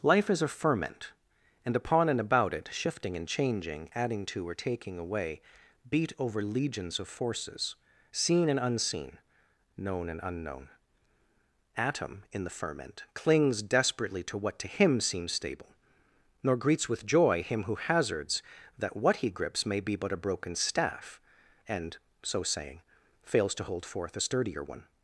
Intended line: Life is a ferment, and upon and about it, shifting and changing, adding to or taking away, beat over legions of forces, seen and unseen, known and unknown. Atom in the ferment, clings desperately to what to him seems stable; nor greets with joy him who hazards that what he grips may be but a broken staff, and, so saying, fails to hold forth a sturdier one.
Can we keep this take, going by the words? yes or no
yes